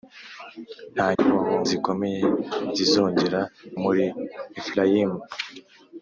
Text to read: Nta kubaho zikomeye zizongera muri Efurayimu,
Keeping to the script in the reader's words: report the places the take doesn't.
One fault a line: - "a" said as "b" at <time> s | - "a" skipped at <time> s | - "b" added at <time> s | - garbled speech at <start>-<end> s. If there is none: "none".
none